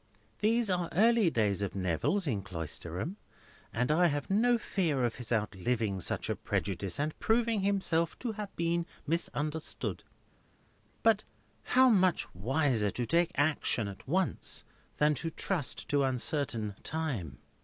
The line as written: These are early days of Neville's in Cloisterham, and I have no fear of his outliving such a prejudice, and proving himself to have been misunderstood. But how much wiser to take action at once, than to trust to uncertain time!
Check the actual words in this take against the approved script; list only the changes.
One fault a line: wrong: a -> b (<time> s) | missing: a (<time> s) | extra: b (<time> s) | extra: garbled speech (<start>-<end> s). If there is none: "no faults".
no faults